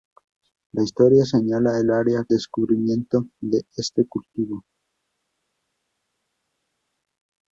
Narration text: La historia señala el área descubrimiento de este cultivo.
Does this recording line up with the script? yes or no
yes